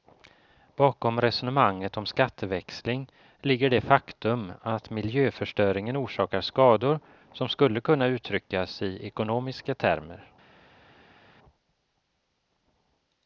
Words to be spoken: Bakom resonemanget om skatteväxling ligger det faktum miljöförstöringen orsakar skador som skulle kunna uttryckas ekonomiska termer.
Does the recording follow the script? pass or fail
fail